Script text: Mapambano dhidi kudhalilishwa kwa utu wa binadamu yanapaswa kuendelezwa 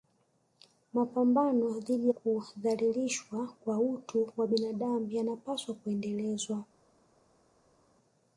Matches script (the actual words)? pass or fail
pass